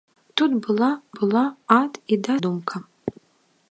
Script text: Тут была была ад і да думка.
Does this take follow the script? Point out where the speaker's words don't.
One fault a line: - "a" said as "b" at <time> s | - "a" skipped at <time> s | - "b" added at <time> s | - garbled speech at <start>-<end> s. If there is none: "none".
none